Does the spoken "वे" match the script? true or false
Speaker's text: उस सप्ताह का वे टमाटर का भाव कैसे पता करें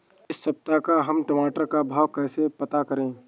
false